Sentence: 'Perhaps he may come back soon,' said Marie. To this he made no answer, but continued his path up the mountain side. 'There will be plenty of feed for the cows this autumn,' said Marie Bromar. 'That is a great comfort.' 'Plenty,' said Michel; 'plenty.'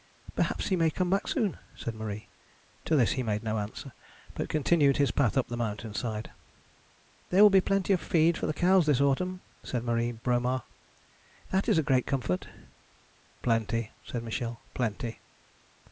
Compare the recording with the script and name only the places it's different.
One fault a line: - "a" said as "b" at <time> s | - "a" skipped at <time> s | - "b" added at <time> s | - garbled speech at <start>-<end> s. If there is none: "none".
none